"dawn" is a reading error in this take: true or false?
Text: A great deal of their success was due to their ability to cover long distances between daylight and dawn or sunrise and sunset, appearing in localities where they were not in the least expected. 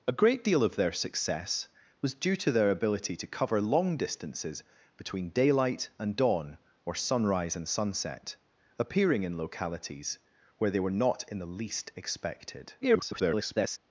false